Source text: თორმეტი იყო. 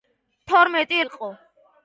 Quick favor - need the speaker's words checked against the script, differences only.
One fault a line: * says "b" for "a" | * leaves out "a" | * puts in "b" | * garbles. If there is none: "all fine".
all fine